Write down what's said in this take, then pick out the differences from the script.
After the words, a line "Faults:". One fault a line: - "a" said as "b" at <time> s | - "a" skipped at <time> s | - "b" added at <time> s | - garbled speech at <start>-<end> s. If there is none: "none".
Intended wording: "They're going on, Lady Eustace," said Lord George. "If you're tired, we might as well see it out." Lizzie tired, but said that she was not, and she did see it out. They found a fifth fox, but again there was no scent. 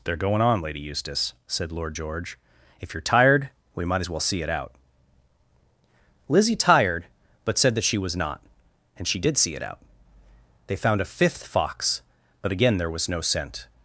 "They're going on, Lady Eustace," said Lord George. "If you're tired, we might as well see it out." Lizzie tired, but said that she was not, and she did see it out. They found a fifth fox, but again there was no scent.
Faults:
none